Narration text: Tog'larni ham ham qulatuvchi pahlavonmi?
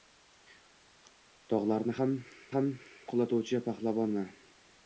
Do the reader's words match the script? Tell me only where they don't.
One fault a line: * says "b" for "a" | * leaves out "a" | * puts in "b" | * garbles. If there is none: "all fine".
all fine